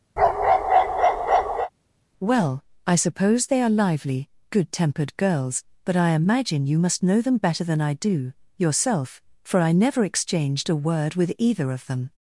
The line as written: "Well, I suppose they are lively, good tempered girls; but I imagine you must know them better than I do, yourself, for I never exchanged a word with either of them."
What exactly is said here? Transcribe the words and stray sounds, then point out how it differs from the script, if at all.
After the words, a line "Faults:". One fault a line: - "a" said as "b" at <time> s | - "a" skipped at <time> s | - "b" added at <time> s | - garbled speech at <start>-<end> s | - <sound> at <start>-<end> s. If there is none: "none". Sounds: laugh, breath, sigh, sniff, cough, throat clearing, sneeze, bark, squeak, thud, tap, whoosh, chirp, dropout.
"Well, I suppose they are lively, good tempered girls; but I imagine you must know them better than I do, yourself, for I never exchanged a word with either of them."
Faults:
- bark at 0.2-1.7 s